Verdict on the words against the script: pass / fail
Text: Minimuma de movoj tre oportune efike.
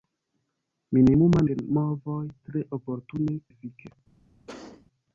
pass